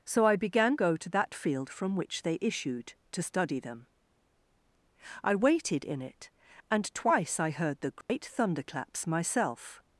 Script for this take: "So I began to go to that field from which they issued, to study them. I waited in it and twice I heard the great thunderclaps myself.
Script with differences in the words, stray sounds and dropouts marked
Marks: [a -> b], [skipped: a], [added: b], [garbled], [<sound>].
"So I began [skipped: to] go to that field from which they issued, to study them. I waited in it and twice I heard the great [dropout] thunderclaps myself.